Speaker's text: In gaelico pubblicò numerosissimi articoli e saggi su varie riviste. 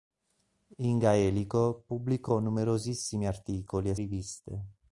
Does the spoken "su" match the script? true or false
false